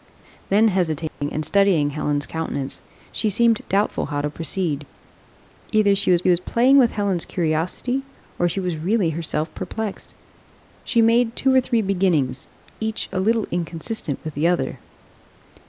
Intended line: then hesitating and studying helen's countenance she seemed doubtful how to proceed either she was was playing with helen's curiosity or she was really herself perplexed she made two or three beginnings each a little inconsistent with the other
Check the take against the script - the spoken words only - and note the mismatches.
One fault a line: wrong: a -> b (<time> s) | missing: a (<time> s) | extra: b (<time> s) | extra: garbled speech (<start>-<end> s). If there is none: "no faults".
no faults